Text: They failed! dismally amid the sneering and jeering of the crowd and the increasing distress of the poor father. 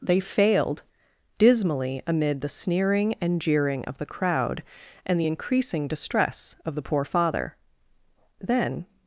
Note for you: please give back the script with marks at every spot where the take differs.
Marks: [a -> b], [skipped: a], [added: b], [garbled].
They failed! dismally amid the sneering and jeering of the crowd and the increasing distress of the poor father. [added: Then]